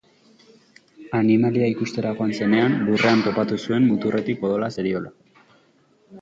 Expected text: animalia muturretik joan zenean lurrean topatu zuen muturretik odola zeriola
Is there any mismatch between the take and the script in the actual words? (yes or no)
yes